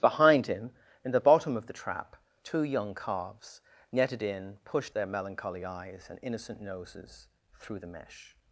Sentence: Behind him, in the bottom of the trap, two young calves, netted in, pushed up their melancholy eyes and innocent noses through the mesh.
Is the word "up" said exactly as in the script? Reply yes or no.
no